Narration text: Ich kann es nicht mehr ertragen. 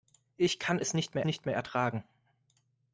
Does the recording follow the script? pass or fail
fail